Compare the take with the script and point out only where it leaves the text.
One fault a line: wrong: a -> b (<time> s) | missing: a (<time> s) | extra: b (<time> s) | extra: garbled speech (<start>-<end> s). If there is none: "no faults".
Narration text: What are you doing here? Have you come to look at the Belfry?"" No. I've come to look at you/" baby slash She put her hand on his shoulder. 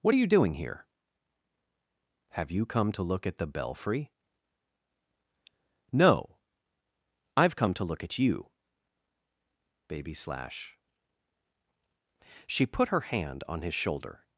no faults